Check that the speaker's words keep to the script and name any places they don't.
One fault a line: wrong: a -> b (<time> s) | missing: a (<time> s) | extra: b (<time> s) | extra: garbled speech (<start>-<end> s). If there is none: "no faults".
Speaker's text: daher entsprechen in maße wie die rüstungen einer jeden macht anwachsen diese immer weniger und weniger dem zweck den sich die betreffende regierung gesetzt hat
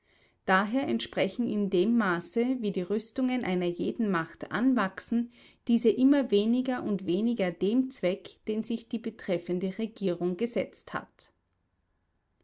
extra: dem (1.7 s)